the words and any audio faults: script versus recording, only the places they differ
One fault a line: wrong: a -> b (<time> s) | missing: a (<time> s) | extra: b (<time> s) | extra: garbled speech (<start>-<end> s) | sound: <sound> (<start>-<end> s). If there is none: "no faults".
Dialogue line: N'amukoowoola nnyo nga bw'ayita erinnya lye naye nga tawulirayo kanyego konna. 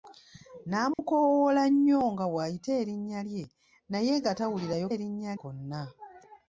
sound: dropout (0.9-1.0 s)
wrong: kanyego -> erinnya (4.9 s)